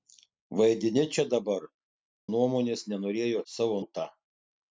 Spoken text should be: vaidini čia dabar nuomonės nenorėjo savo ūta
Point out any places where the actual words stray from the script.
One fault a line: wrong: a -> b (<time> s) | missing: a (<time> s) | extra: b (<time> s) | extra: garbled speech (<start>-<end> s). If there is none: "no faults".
no faults